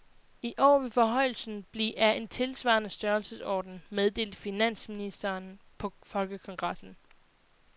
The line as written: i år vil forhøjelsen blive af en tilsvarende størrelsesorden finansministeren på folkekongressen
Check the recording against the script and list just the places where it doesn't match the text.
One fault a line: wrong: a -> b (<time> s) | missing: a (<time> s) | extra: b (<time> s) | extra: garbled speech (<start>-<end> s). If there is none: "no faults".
extra: meddelte (3.9 s)